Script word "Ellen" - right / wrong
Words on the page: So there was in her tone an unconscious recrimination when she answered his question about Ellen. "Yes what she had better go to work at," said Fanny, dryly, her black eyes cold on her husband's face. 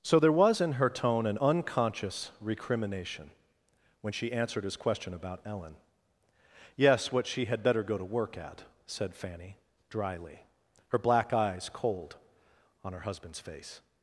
right